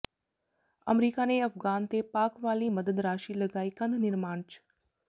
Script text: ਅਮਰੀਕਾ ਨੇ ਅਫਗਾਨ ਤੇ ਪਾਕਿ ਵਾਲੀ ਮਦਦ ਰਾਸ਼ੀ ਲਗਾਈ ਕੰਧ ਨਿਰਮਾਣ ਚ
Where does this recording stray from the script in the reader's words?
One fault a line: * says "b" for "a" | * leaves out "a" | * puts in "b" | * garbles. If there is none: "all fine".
all fine